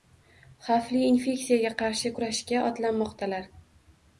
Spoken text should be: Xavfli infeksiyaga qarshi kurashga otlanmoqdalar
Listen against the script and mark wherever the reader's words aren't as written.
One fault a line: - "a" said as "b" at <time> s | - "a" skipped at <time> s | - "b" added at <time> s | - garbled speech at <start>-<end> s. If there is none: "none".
none